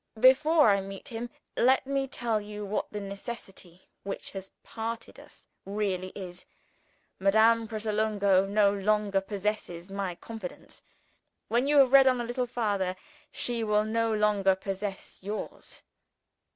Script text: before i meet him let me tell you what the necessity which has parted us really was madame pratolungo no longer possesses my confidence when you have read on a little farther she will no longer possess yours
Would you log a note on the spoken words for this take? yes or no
yes